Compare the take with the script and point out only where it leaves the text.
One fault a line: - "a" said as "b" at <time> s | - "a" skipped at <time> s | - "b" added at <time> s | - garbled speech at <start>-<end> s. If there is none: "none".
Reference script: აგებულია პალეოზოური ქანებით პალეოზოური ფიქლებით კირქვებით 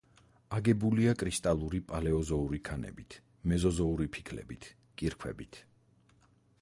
- "კრისტალური" added at 1.2 s
- "პალეოზოური" said as "მეზოზოური" at 3.5 s